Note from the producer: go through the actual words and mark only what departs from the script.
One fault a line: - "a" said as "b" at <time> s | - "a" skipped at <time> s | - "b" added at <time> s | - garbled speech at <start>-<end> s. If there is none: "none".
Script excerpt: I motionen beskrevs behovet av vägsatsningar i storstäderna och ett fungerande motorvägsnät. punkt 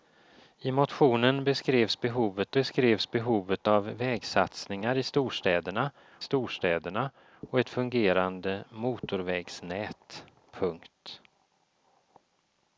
- "beskrevs behovet" added at 2.5 s
- "storstäderna" added at 6.2 s